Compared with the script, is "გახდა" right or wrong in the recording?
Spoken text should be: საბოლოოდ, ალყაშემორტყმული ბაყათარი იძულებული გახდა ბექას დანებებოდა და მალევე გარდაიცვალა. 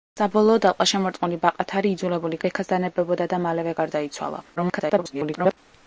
wrong